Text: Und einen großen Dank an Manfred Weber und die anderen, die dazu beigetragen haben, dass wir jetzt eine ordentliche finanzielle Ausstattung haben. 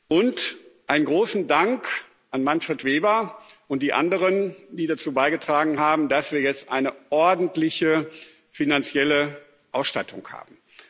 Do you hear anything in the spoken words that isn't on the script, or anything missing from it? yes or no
no